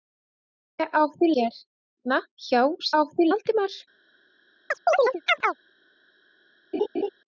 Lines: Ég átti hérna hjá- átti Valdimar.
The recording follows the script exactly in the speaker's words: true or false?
true